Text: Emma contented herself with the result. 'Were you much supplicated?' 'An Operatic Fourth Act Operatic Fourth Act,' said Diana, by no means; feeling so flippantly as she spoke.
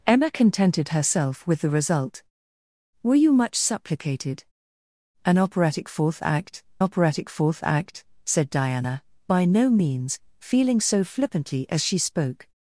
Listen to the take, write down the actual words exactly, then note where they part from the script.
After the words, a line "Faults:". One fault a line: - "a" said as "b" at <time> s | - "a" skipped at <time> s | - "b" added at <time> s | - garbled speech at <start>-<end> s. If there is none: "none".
Emma contented herself with the result. 'Were you much supplicated?' 'An Operatic Fourth Act Operatic Fourth Act,' said Diana, by no means; feeling so flippantly as she spoke.
Faults:
none